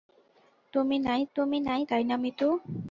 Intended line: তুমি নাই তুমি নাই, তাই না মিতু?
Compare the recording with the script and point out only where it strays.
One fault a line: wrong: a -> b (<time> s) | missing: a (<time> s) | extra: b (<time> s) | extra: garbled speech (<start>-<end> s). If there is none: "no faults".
no faults